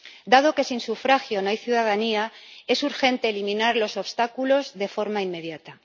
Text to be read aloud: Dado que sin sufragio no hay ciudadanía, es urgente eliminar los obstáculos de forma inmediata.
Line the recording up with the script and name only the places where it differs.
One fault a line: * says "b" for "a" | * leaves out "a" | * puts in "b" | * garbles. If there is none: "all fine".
all fine